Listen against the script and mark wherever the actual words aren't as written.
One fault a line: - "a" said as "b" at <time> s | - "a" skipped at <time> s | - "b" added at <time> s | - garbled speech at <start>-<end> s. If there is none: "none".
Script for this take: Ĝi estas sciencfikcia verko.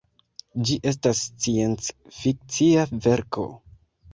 none